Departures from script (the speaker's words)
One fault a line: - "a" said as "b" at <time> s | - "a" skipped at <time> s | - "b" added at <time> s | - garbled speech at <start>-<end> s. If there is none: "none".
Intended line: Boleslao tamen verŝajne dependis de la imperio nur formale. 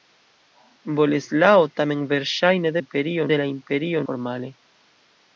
- "dependis" said as "imperio" at 2.8 s
- "nur" skipped at 4.1 s